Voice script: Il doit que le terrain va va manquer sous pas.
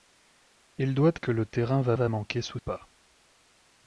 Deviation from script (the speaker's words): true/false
false